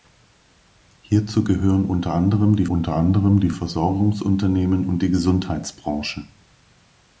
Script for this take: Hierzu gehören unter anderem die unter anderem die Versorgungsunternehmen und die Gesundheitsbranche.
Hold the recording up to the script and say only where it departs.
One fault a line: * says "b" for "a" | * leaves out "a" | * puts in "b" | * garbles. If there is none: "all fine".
all fine